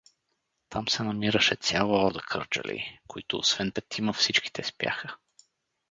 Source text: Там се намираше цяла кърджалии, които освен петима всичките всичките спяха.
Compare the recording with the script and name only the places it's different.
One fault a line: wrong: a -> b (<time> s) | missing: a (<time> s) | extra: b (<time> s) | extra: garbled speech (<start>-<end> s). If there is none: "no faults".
extra: орда (2.0 s)
missing: всичките (4.6 s)